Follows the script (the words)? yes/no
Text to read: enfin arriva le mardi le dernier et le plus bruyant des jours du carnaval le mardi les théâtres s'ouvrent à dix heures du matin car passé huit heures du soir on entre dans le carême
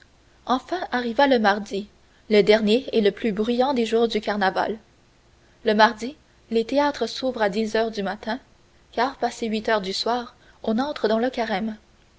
yes